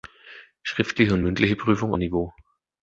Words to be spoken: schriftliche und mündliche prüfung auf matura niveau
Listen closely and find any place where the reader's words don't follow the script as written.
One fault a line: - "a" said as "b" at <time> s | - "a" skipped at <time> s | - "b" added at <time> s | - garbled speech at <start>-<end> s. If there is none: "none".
- "auf matura" skipped at 1.9 s